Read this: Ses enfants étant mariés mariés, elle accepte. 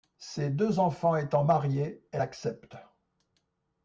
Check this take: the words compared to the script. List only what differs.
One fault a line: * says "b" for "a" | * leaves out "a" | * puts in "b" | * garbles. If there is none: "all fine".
* puts in "deux"
* leaves out "mariés"